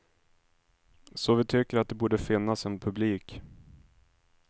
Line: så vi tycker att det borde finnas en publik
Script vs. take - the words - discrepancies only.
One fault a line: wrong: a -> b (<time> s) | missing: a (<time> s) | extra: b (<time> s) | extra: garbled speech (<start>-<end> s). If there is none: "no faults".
no faults